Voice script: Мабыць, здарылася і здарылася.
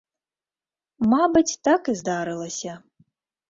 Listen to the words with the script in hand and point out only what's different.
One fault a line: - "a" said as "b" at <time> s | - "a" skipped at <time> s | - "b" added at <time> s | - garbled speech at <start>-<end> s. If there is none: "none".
- "здарылася" said as "так" at 1.7 s